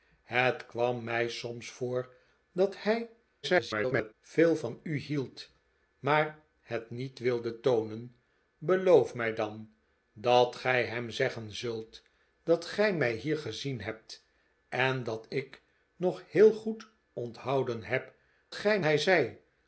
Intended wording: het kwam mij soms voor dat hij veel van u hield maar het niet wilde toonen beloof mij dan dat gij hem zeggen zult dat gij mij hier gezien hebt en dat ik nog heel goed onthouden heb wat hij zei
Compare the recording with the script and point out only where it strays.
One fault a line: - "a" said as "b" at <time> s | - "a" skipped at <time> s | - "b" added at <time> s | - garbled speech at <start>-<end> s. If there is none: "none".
- garbled speech at 3.4-4.1 s
- "wat" said as "gij" at 18.5 s